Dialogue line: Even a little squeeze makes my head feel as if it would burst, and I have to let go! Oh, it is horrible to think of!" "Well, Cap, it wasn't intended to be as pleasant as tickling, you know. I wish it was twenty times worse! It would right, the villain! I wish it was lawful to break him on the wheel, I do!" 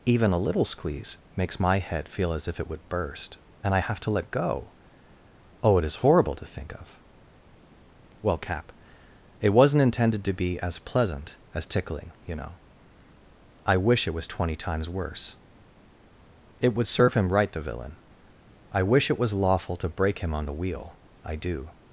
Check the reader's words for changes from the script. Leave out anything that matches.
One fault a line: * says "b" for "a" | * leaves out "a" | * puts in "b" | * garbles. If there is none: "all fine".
* puts in "serve him"